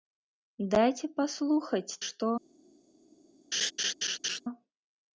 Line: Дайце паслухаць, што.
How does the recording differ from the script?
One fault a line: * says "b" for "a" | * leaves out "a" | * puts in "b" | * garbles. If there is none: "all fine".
all fine